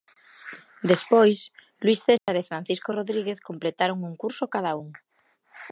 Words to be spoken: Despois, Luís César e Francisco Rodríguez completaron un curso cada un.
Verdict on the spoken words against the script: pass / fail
pass